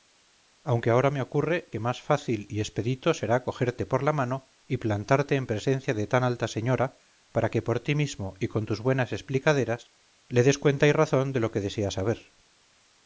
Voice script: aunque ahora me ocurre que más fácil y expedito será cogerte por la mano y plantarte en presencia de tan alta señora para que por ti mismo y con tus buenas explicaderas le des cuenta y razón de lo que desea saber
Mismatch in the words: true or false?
false